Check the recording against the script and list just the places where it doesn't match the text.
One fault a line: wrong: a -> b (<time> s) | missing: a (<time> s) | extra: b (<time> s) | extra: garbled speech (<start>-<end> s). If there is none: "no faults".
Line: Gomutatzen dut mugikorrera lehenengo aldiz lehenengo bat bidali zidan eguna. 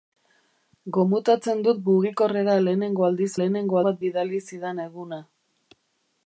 no faults